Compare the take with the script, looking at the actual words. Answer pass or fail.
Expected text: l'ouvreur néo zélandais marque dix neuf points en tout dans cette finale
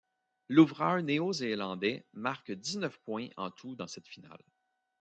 pass